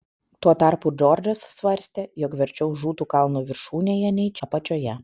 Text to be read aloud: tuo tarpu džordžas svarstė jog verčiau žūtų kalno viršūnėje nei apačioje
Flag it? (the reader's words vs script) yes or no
no